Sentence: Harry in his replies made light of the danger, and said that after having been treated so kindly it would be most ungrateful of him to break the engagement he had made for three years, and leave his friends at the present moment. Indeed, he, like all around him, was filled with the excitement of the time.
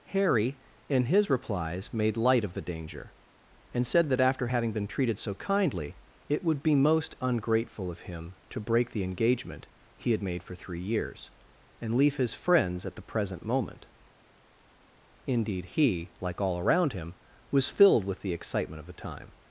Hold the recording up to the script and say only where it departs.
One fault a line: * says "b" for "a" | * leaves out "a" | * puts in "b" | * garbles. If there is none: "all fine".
all fine